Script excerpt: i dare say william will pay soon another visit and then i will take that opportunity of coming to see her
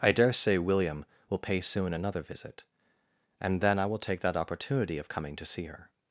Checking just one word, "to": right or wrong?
right